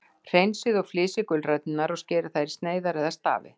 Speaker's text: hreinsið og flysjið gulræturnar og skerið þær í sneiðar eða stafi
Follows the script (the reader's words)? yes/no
yes